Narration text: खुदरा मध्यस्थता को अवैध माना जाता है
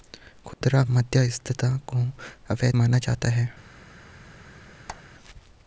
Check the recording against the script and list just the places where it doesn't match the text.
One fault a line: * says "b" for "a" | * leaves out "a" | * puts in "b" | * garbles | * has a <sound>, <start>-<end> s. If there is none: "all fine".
* has a dropout, 0.5-0.6 s
* has a squeak, 4.9-5.0 s